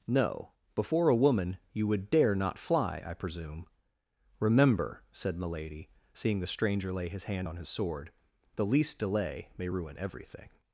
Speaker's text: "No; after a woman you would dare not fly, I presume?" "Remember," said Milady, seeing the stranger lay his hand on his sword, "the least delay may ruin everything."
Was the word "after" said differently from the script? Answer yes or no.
yes